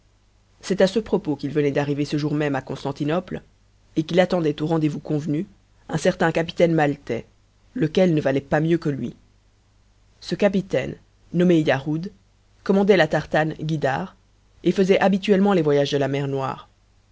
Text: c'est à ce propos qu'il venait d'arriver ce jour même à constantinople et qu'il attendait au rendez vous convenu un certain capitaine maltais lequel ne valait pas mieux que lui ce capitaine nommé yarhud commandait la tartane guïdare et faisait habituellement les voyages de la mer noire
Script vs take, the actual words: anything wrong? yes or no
no